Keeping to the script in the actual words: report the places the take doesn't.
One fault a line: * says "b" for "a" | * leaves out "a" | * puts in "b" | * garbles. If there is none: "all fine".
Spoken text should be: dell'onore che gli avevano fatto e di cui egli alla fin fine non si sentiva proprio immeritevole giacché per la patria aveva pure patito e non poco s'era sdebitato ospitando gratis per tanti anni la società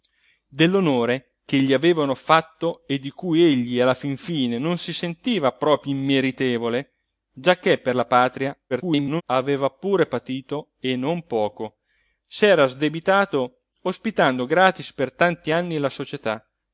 * garbles